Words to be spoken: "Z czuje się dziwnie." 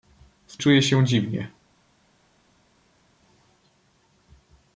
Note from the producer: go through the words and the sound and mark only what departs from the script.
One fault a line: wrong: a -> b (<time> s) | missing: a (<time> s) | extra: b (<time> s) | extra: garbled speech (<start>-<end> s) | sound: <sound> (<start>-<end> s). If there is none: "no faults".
no faults